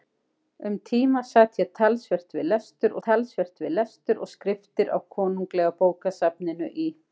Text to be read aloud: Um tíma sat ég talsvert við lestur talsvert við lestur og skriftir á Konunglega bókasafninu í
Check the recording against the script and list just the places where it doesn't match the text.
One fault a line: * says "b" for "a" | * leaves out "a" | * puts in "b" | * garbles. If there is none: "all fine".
all fine